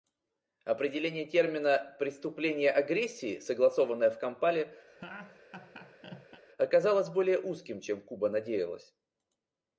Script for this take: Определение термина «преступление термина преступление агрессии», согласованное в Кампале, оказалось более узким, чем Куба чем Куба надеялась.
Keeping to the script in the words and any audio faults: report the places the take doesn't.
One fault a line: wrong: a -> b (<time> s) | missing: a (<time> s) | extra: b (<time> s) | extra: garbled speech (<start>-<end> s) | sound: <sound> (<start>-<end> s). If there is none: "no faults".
missing: термина преступление (2.7 s)
sound: laugh (4.9-6.4 s)
missing: чем Куба (8.3 s)